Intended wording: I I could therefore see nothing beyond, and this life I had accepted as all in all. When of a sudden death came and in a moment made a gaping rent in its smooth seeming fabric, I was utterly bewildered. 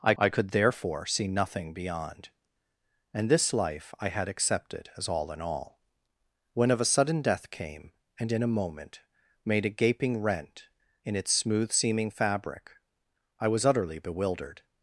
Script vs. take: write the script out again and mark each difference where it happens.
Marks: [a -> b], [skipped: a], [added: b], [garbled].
I I could therefore see nothing beyond, and this life I had accepted as all in all. When of a sudden death came and in a moment made a gaping rent in its smooth seeming fabric, I was utterly bewildered.